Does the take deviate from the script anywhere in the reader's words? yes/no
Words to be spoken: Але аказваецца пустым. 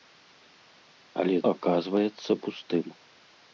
no